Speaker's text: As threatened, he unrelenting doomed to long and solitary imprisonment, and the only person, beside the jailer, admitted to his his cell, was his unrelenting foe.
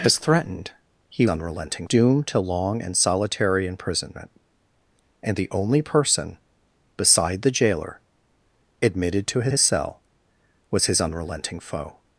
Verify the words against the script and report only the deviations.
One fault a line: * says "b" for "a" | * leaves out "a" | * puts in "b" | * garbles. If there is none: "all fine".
all fine